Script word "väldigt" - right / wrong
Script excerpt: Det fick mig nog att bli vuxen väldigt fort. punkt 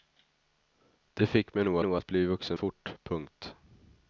wrong